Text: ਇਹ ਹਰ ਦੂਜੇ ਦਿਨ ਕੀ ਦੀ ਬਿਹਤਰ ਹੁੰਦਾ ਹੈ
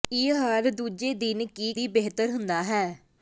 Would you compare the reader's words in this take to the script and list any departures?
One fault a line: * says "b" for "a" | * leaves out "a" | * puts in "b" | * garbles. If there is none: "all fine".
all fine